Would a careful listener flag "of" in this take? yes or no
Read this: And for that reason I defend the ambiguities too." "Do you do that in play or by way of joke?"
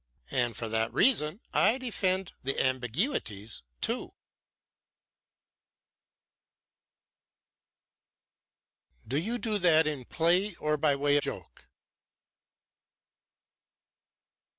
yes